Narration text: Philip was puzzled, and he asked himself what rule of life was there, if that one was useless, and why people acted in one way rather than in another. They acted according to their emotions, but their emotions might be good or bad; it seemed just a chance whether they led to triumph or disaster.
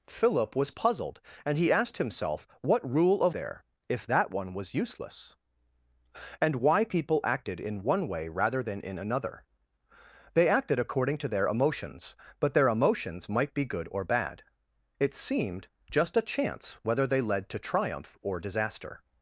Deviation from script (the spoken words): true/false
true